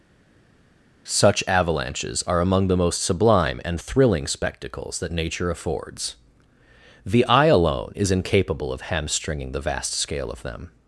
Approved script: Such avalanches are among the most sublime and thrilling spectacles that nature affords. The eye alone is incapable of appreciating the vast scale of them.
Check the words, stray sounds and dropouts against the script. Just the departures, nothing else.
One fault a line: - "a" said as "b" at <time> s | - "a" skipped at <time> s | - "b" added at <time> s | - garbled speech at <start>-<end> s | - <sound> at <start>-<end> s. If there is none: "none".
- "appreciating" said as "hamstringing" at 8.8 s